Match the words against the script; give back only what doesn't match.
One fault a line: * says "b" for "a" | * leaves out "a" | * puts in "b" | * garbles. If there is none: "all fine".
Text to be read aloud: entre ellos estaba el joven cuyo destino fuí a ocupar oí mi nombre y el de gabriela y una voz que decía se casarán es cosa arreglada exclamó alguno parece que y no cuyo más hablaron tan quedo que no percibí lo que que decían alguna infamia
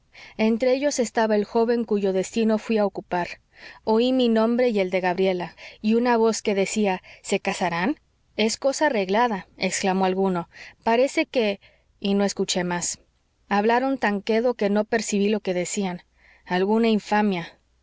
* says "escuché" for "cuyo"
* leaves out "que"